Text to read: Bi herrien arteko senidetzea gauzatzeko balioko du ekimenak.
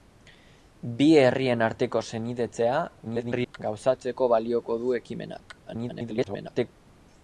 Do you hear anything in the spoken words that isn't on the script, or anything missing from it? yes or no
yes